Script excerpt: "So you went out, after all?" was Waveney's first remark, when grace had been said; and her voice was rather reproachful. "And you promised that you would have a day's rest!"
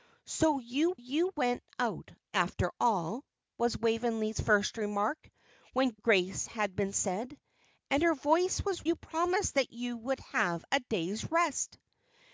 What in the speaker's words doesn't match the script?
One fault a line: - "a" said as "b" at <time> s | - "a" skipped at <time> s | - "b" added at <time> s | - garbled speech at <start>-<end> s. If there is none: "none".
- "you" added at 0.9 s
- "rather reproachful And" skipped at 8.8 s